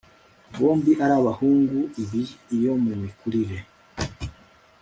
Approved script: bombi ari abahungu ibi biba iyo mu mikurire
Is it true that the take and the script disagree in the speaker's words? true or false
true